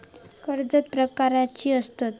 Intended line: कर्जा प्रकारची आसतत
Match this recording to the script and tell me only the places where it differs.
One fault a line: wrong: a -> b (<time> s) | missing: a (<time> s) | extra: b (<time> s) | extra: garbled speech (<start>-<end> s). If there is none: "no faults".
no faults